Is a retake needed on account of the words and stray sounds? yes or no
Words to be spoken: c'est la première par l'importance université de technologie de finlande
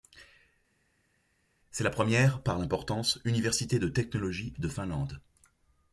no